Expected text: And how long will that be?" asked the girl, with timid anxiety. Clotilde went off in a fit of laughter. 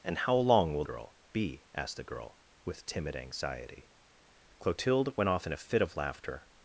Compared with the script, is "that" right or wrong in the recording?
wrong